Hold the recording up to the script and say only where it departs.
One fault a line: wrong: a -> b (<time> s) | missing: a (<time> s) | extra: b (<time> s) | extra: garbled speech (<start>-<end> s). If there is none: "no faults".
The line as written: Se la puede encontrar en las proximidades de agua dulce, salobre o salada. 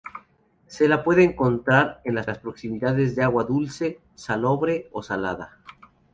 extra: las (2.3 s)